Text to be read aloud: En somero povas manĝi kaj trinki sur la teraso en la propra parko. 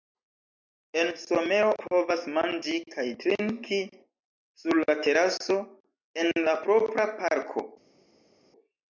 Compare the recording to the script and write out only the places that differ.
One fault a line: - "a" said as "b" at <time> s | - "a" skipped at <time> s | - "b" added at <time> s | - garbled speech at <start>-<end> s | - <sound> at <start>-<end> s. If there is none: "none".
none